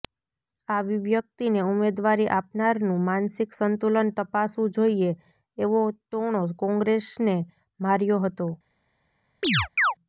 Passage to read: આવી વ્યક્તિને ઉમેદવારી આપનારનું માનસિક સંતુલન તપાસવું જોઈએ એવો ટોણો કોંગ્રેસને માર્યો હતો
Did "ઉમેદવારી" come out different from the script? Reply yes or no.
no